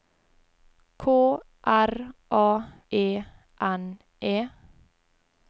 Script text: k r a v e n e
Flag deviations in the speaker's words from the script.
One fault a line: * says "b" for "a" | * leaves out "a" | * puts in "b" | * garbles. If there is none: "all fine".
* leaves out "v"